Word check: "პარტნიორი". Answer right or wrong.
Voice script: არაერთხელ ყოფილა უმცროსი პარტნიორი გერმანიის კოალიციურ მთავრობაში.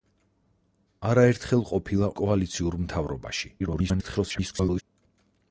wrong